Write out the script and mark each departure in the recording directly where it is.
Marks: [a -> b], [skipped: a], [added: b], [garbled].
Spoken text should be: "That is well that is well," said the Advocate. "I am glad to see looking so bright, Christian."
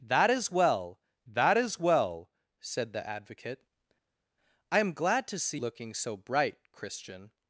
"That is well that is well," said the Advocate. "I am glad to see looking so bright, Christian."